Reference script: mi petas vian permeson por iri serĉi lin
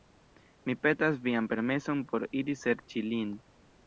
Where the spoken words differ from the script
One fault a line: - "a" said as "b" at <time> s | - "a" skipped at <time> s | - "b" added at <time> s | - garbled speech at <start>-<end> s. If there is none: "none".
none